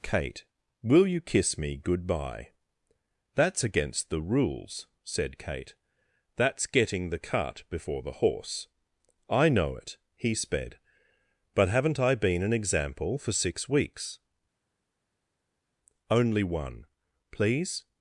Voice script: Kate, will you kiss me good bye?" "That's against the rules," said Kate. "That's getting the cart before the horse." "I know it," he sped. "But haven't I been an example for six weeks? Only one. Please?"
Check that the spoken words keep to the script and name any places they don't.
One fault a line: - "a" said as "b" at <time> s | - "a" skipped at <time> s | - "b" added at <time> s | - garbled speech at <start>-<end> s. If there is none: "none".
none